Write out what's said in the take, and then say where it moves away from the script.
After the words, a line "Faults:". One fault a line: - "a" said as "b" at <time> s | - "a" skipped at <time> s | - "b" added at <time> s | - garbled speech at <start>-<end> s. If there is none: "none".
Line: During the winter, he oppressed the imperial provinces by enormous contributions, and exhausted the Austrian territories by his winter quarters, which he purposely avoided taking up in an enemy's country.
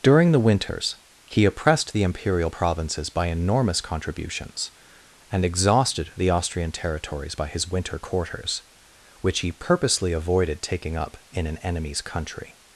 During the winters, he oppressed the imperial provinces by enormous contributions, and exhausted the Austrian territories by his winter quarters, which he purposely avoided taking up in an enemy's country.
Faults:
- "winter" said as "winters" at 0.4 s